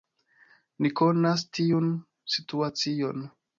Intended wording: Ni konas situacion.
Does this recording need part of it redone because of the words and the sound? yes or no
yes